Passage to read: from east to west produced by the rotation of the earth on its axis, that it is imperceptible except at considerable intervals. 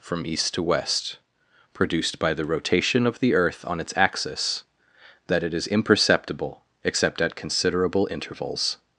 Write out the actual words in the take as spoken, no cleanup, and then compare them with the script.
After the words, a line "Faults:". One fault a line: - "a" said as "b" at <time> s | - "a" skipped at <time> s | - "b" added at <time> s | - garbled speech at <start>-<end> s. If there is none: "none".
from east to west produced by the rotation of the earth on its axis, that it is imperceptible except at considerable intervals.
Faults:
none